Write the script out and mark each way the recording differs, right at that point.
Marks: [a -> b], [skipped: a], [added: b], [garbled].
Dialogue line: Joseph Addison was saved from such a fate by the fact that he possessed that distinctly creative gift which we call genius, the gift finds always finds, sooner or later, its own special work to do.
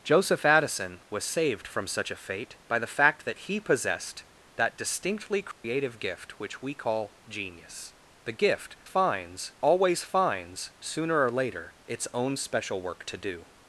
Joseph Addison was saved from such a fate by the fact that he possessed that distinctly creative gift which we call genius, the gift finds always finds, sooner or later, its own special work to do.